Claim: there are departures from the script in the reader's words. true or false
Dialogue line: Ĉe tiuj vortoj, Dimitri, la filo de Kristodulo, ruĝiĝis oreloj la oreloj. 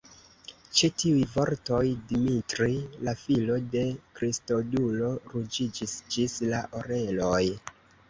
true